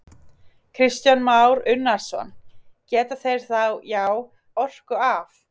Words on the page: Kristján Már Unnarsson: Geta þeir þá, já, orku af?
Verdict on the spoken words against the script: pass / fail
pass